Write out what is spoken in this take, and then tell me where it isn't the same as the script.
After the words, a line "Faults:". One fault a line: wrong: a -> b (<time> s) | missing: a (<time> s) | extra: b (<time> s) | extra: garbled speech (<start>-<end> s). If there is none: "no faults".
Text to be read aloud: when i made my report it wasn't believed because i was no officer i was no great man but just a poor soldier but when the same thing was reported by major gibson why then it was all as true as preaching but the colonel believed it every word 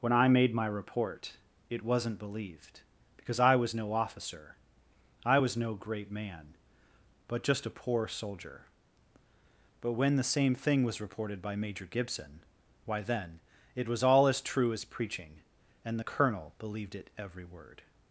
when i made my report it wasn't believed because i was no officer i was no great man but just a poor soldier but when the same thing was reported by major gibson why then it was all as true as preaching and the colonel believed it every word
Faults:
wrong: but -> and (15.8 s)